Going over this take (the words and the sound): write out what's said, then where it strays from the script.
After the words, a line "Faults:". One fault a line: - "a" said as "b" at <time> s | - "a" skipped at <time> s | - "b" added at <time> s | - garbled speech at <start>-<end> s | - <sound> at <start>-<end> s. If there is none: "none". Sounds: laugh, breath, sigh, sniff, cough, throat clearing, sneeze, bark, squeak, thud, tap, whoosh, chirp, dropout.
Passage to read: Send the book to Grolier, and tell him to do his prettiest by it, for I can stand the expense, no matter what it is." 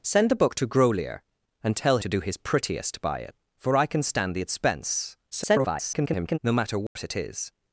Send the book to Grolier, and tell to do his prettiest by it, for I can stand the expense, [garbled] no matter what it is."
Faults:
- "him" skipped at 2.0 s
- garbled speech at 5.3-6.4 s
- dropout at 6.9-7.0 s